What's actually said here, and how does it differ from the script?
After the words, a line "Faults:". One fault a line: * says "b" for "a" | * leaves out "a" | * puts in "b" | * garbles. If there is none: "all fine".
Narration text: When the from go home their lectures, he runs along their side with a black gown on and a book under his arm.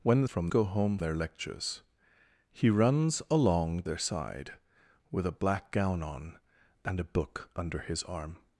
When the from go home their lectures, he runs along their side with a black gown on and a book under his arm.
Faults:
all fine